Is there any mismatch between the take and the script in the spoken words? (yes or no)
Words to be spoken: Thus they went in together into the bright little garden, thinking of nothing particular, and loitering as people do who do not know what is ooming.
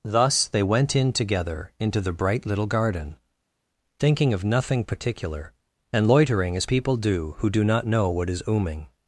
no